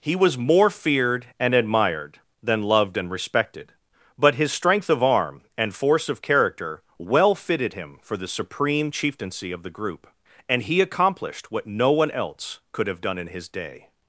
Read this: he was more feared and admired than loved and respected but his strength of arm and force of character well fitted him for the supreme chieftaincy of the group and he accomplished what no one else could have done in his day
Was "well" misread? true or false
false